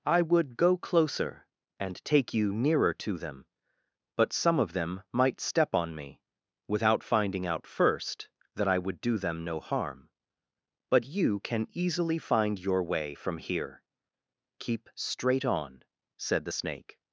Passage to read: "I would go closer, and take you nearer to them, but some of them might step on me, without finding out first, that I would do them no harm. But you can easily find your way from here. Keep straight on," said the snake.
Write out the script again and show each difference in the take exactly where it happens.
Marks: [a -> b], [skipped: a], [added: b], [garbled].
"I would go closer, and take you nearer to them, but some of them might step on me, without finding out first, that I would do them no harm. But you can easily find your way from here. Keep straight on," said the snake.